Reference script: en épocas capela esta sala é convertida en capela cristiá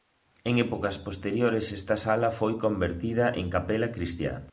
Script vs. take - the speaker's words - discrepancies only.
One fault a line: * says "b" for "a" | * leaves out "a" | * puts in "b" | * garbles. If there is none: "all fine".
* says "posteriores" for "capela"
* says "foi" for "é"